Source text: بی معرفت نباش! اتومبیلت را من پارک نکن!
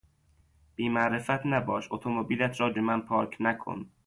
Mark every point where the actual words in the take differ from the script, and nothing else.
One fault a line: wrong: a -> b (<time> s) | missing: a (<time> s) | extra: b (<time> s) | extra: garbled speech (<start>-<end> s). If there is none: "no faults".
no faults